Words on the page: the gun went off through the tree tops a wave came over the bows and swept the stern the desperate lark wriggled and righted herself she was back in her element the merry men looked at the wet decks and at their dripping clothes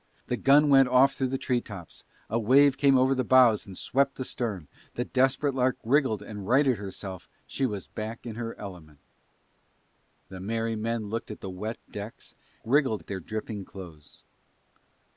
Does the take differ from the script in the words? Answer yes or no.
yes